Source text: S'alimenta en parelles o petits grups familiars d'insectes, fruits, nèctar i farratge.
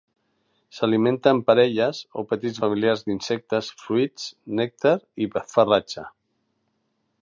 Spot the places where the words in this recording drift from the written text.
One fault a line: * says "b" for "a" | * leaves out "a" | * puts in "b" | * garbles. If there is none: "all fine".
* leaves out "grups"